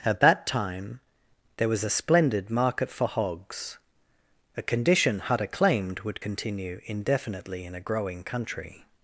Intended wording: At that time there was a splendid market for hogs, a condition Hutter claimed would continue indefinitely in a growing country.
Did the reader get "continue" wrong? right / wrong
right